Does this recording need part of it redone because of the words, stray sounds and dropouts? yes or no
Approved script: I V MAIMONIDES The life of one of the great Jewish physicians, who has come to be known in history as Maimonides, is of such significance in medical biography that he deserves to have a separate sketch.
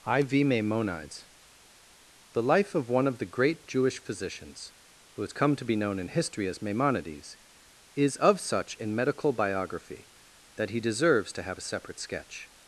yes